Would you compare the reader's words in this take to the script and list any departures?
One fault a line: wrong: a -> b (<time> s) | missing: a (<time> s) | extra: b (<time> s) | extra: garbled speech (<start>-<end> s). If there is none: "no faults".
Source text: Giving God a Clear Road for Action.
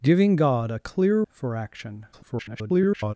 missing: Road (1.2 s)
extra: garbled speech (2.1-3.1 s)